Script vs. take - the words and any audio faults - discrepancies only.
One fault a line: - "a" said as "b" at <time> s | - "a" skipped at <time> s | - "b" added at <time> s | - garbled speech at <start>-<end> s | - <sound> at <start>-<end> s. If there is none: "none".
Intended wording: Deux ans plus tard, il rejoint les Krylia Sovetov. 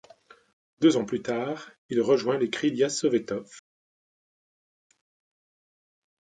none